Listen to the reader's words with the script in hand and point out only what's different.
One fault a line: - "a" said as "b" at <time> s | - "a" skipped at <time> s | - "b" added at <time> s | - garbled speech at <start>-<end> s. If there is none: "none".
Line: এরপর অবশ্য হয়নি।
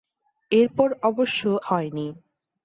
none